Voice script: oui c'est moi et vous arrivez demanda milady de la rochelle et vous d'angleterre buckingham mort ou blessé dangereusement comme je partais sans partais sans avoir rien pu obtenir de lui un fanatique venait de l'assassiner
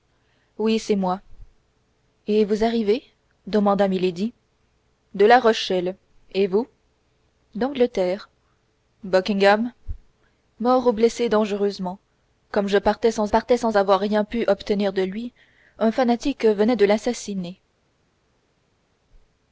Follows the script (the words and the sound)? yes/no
yes